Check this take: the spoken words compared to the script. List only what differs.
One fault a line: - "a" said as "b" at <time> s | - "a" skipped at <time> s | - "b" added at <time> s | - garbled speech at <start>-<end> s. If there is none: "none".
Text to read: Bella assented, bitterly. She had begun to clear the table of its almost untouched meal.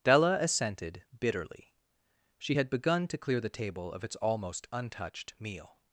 - "Bella" said as "Della" at 0.0 s